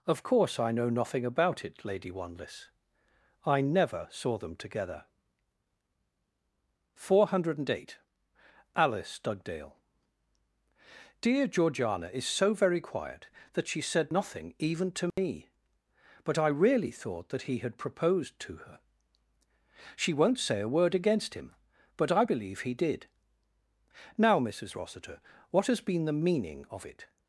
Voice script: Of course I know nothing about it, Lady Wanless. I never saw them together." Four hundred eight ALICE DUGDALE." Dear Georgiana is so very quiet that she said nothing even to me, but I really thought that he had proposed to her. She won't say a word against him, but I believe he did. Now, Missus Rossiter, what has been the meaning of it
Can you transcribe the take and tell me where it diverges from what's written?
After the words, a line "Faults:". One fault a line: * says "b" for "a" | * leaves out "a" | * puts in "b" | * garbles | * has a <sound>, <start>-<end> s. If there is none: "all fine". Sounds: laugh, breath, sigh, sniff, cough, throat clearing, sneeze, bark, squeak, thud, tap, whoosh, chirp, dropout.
Of course I know nothing about it, Lady Wanless. I never saw them together." Four hundred eight ALICE DUGDALE." Dear Georgiana is so very quiet that she said nothing even to me, but I really thought that he had proposed to her. She won't say a word against him, but I believe he did. Now, Missus Rossiter, what has been the meaning of it
Faults:
* has a dropout, 15.1-15.2 s